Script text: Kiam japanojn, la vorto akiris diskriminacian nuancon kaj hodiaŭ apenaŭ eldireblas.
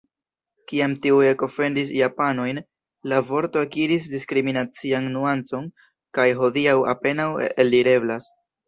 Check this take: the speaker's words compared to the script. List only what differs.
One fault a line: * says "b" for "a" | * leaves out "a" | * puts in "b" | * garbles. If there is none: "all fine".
* puts in "tiuj ekofendis"